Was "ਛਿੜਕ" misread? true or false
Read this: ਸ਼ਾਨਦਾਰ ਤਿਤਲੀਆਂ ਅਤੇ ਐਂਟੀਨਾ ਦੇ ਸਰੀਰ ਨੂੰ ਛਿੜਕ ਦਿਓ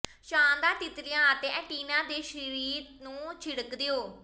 false